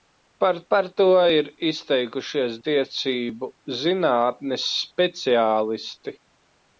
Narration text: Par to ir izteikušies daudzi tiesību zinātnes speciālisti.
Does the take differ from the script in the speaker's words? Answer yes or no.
yes